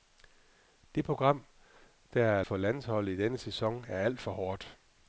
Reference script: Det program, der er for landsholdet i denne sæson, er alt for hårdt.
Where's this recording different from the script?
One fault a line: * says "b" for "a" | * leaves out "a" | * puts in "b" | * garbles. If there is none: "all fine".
all fine